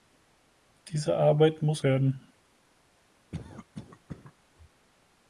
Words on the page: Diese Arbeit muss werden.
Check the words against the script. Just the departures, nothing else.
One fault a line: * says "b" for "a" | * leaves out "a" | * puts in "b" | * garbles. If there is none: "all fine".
all fine